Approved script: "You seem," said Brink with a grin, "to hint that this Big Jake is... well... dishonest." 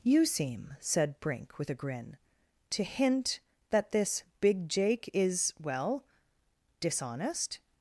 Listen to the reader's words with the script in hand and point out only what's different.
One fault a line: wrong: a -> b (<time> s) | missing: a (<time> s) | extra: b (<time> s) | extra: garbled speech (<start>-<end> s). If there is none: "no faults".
no faults